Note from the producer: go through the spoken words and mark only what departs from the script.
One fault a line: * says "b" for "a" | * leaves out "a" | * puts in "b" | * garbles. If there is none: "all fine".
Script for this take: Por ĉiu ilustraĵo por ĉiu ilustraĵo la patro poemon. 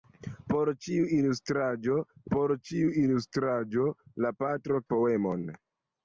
all fine